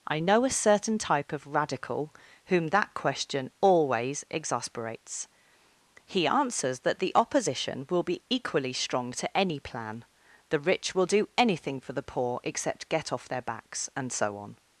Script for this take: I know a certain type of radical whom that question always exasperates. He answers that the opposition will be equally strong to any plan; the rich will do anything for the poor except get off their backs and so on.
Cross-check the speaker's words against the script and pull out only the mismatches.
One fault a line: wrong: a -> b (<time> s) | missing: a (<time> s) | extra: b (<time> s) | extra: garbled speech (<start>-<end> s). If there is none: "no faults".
no faults